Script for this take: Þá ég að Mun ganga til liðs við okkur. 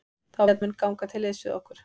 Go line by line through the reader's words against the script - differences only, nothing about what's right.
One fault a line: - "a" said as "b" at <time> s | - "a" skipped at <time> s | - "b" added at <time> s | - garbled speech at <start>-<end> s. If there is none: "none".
none